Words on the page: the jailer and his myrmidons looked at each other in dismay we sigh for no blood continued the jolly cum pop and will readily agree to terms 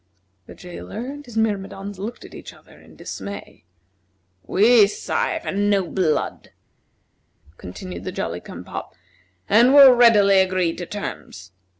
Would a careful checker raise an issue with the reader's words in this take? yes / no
no